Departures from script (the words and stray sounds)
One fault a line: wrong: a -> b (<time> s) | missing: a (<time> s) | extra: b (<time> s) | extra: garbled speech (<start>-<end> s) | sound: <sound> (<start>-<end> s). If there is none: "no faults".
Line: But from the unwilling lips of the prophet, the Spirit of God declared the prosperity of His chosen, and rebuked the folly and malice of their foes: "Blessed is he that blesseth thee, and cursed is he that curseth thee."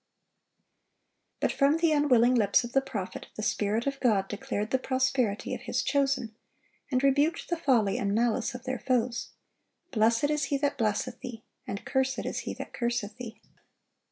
no faults